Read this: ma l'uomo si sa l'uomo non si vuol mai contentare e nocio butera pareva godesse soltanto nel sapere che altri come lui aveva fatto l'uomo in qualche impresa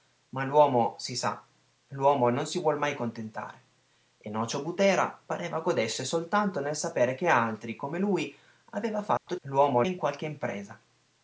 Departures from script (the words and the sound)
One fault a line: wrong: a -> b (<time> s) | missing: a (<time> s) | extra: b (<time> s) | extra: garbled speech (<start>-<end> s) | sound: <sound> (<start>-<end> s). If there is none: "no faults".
sound: dropout (9.2-9.3 s)